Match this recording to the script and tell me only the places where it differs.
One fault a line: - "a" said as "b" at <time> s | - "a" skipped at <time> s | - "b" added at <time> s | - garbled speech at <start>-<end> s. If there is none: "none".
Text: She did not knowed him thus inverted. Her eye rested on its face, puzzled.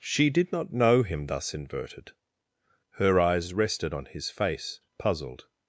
- "knowed" said as "know" at 0.7 s
- "eye" said as "eyes" at 3.2 s
- "its" said as "his" at 4.1 s